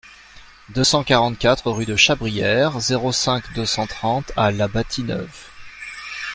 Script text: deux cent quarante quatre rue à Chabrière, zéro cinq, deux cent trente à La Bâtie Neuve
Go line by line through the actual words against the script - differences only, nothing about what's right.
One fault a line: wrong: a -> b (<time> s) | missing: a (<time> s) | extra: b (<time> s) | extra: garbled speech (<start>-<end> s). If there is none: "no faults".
wrong: à -> de (1.8 s)